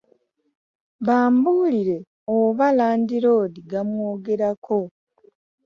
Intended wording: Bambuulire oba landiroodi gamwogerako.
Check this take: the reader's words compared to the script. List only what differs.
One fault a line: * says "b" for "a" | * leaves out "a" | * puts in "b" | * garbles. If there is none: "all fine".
all fine